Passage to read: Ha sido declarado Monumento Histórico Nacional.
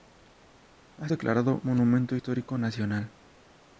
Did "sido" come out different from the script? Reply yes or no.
yes